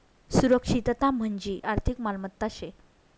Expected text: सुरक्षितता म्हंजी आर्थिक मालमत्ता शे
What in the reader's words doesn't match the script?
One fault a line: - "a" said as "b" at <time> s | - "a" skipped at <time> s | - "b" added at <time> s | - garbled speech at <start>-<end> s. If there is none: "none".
none